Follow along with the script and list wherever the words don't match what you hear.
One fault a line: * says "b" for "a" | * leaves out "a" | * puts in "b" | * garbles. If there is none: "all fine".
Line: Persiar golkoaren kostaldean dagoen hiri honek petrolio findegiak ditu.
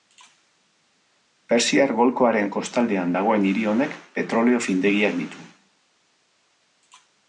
all fine